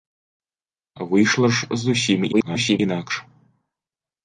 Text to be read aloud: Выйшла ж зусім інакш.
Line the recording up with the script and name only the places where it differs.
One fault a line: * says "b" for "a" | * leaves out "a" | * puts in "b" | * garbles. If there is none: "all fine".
* garbles